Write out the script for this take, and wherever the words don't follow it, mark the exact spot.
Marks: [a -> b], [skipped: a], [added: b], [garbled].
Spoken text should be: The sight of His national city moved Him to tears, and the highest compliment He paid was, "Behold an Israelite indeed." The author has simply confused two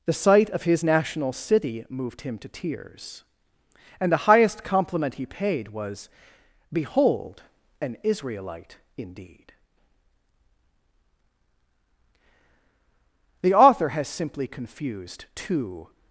The sight of His national city moved Him to tears, and the highest compliment He paid was, "Behold an Israelite indeed." The author has simply confused two